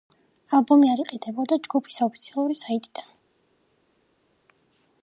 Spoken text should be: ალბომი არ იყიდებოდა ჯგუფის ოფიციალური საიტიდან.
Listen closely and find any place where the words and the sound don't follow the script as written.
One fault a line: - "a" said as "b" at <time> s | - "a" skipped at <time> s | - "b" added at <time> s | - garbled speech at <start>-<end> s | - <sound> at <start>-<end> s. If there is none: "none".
none